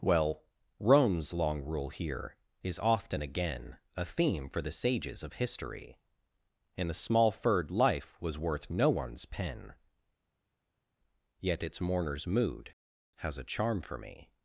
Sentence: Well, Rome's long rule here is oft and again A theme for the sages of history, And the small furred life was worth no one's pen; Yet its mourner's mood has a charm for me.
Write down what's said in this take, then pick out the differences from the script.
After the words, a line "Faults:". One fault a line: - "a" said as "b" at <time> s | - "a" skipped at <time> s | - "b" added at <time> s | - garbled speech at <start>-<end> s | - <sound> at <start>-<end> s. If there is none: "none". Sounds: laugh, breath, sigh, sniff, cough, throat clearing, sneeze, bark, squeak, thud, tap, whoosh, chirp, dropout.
Well, Rome's long rule here is often again A theme for the sages of history, And a small furred life was worth no one's pen; Yet its mourner's mood has a charm for me.
Faults:
- "oft and" said as "often" at 2.8 s
- "the" said as "a" at 6.9 s